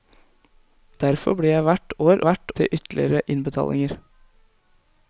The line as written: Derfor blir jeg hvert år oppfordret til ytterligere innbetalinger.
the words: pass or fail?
fail